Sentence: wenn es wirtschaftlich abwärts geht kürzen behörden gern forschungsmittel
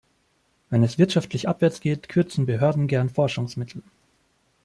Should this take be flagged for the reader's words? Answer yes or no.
no